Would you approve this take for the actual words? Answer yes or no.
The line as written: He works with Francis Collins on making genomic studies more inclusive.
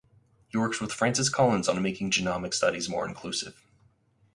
yes